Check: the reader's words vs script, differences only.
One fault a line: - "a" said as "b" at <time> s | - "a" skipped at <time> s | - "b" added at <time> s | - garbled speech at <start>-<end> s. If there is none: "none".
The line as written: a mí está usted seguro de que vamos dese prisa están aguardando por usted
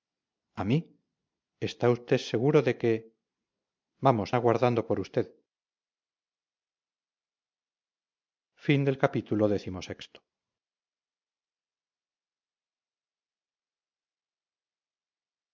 - "dese prisa están" skipped at 4.3 s